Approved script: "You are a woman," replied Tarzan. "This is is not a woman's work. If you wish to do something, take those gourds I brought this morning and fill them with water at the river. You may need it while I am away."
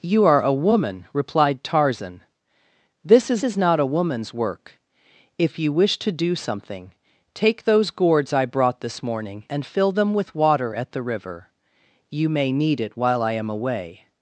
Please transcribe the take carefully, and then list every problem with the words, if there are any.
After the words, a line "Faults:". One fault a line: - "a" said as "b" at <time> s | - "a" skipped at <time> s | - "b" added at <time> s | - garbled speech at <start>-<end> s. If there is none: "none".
"You are a woman," replied Tarzan. "This is is not a woman's work. If you wish to do something, take those gourds I brought this morning and fill them with water at the river. You may need it while I am away."
Faults:
none